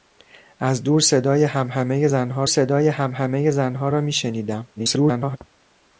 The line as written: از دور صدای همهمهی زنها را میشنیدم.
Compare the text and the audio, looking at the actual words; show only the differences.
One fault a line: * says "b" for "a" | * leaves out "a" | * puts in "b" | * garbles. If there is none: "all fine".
* puts in "صدای همهمهی زنها"
* garbles